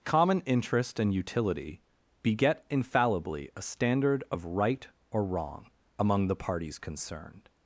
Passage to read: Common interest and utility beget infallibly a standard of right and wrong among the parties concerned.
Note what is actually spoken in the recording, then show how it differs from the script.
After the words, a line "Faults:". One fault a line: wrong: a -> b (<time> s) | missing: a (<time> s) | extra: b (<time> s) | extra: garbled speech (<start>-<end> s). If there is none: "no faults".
Common interest and utility beget infallibly a standard of right or wrong among the parties concerned.
Faults:
wrong: and -> or (5.1 s)